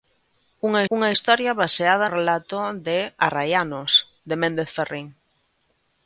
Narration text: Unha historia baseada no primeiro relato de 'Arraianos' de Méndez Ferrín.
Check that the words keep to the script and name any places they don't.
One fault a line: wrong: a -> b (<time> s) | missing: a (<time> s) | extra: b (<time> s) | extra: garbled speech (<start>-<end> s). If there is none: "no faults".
extra: unha (0.9 s)
missing: no primeiro (2.1 s)